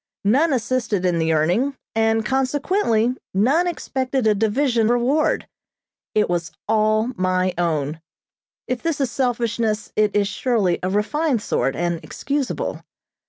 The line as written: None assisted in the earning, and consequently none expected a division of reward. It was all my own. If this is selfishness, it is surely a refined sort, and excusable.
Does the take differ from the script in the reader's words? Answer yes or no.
yes